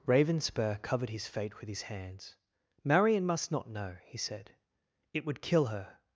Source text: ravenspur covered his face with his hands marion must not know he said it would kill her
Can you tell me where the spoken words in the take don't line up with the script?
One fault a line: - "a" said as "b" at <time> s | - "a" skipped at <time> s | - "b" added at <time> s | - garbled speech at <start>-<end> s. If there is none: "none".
- "face" said as "fate" at 1.3 s